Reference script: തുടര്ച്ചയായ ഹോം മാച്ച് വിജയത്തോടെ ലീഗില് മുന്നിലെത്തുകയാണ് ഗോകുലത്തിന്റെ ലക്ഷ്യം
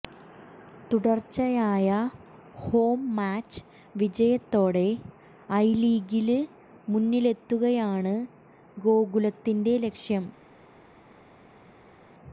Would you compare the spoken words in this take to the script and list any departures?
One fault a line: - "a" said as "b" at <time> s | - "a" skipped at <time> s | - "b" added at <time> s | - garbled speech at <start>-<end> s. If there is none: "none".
- "ഐ" added at 5.6 s